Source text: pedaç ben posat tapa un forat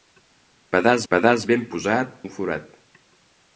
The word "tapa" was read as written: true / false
false